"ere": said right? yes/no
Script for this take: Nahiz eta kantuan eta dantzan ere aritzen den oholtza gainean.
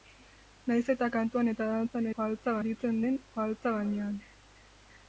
no